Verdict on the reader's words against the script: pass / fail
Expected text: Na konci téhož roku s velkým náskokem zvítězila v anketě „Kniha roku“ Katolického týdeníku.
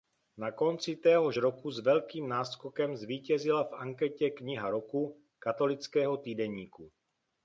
pass